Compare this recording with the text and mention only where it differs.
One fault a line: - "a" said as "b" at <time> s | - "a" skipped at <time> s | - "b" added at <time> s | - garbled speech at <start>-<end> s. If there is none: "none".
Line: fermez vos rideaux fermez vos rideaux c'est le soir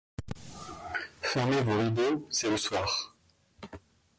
- "fermez vos rideaux" skipped at 2.3 s